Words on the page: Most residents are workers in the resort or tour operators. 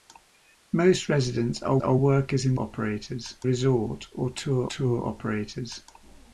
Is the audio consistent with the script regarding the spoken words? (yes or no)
no